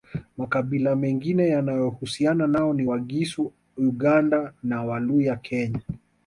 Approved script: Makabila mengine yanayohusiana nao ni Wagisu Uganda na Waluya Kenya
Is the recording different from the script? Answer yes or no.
no